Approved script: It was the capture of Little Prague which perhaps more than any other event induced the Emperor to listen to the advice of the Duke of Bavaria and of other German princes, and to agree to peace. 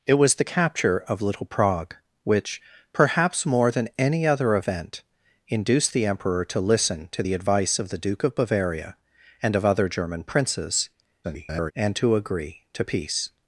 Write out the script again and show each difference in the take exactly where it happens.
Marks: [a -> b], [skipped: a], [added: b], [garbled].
It was the capture of Little Prague which perhaps more than any other event induced the Emperor to listen to the advice of the Duke of Bavaria and of other German princes, [garbled] and to agree to peace.